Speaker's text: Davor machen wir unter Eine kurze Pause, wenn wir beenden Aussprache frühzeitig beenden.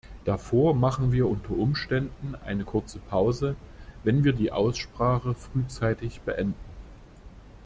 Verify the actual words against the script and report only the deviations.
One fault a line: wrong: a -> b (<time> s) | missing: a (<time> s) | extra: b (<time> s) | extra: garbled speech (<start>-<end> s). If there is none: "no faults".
extra: Umständen (1.5 s)
wrong: beenden -> die (4.3 s)